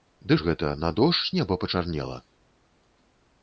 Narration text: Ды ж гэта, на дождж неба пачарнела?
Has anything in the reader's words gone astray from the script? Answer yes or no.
no